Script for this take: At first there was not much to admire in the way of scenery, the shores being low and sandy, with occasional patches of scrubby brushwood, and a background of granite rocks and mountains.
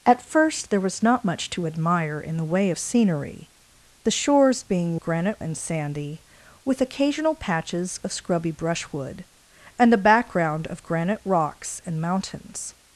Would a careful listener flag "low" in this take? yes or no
yes